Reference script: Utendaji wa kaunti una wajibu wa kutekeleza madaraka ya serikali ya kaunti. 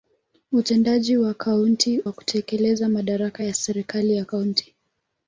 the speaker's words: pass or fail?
fail